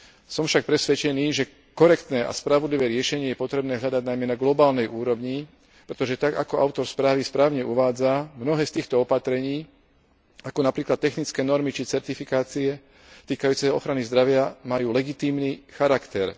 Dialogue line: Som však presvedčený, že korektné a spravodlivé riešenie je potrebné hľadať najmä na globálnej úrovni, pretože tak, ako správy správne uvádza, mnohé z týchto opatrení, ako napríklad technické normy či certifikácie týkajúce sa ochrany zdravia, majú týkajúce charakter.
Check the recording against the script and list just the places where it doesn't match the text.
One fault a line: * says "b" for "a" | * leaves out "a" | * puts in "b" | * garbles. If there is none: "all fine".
* puts in "autor"
* says "legitímny" for "týkajúce"